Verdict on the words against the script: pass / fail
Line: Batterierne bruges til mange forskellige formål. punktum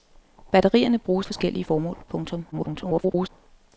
fail